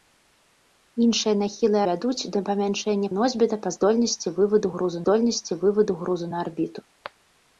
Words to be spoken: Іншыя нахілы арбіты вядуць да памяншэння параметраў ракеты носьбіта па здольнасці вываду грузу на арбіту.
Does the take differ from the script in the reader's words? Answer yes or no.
yes